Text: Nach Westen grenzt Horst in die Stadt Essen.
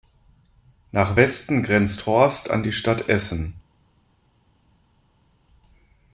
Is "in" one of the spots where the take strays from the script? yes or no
yes